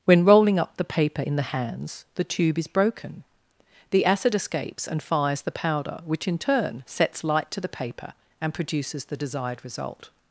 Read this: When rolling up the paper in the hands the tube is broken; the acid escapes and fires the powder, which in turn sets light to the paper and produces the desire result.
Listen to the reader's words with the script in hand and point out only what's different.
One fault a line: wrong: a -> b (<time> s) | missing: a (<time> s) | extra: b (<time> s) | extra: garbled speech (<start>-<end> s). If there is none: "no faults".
wrong: desire -> desired (9.2 s)